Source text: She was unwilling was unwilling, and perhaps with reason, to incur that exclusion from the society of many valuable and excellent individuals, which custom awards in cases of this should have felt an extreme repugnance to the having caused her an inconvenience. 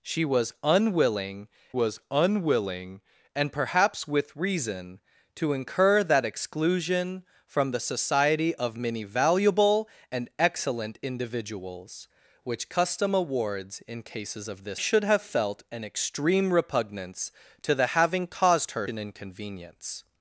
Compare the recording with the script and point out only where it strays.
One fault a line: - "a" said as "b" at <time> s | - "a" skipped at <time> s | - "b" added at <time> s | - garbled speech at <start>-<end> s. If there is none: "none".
none